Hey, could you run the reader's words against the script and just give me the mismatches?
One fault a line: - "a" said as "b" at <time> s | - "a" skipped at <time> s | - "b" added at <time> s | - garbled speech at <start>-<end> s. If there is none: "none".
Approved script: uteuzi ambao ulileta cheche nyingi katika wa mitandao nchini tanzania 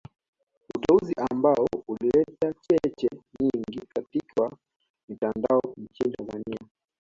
none